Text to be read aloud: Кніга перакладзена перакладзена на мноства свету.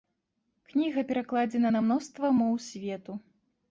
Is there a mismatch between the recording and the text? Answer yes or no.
yes